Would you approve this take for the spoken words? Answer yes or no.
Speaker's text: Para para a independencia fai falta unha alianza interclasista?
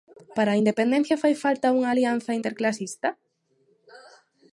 no